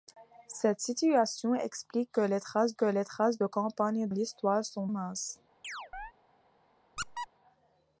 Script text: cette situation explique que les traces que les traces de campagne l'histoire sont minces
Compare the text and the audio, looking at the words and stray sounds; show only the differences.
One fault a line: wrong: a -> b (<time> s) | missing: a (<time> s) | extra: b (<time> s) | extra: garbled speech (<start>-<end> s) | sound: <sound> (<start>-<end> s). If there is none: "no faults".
sound: chirp (5.6-6.1 s)
sound: squeak (7.0-7.3 s)